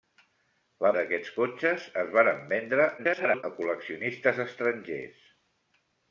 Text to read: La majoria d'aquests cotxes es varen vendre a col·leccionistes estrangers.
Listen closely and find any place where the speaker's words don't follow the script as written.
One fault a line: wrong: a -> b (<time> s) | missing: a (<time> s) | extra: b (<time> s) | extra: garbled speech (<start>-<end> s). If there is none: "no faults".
missing: majoria (0.9 s)
extra: garbled speech (3.0-3.4 s)